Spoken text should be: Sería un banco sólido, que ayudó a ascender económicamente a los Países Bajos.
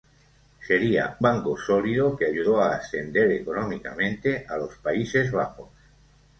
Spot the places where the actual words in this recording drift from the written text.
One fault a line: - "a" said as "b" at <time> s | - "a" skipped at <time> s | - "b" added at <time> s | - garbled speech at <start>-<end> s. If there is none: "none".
- "un" skipped at 1.2 s